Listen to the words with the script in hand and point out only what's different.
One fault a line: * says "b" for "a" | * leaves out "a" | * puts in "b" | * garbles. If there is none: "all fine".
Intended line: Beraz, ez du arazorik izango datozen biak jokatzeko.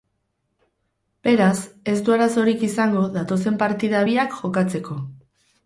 * puts in "partida"